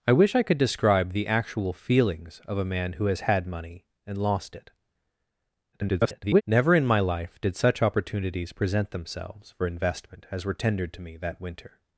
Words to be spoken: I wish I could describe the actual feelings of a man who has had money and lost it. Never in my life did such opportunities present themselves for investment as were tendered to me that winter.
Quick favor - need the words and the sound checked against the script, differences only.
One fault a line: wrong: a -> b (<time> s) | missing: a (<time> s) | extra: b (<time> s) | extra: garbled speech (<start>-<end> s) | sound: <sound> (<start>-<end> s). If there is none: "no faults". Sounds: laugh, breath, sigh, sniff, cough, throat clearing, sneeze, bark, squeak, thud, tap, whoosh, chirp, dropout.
extra: garbled speech (5.7-6.4 s)